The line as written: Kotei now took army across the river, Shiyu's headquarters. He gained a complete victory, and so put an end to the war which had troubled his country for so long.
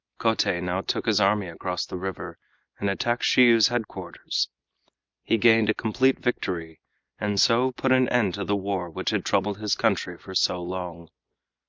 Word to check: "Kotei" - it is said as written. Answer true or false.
true